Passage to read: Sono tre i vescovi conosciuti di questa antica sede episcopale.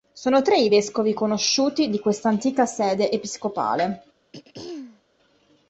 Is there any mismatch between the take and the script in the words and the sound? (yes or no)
yes